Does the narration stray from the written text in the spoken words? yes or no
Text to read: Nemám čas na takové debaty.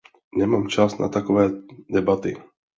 no